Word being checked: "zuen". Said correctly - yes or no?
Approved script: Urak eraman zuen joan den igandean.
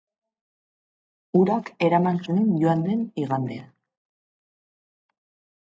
yes